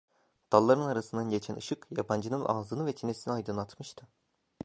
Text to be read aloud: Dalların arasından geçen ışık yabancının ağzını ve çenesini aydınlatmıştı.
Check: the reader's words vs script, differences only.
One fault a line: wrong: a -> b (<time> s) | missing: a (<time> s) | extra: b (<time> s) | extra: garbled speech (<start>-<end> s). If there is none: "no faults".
no faults